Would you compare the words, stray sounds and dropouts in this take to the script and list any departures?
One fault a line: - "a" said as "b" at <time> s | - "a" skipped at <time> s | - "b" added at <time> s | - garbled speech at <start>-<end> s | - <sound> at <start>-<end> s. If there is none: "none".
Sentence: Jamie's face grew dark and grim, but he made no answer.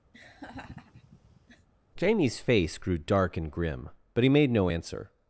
- laugh at 0.1-1.7 s